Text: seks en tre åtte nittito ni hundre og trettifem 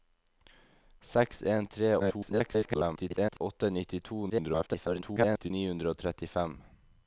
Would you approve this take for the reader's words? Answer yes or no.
no